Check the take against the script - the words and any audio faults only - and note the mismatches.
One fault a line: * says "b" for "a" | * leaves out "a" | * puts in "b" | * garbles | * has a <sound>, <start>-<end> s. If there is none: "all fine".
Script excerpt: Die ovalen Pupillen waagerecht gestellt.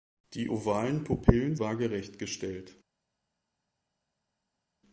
all fine